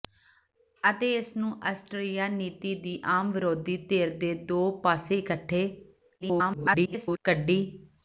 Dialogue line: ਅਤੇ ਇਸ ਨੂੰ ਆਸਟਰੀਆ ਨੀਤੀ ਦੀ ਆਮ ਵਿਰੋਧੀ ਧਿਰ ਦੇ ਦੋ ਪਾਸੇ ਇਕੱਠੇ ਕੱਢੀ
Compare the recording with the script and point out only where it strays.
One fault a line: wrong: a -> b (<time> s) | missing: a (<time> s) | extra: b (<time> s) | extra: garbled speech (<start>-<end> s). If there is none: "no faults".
extra: garbled speech (6.2-7.2 s)